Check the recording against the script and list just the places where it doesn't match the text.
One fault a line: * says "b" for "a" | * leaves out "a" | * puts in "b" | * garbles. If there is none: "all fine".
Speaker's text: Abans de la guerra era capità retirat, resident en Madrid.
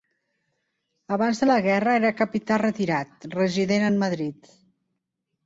all fine